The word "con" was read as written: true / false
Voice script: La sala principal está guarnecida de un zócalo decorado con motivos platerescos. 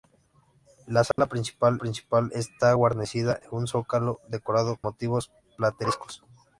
false